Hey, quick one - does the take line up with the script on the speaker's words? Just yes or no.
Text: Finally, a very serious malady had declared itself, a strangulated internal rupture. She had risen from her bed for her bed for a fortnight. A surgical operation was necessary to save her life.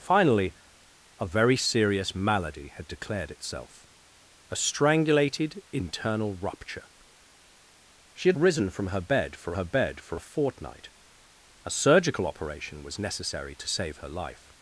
yes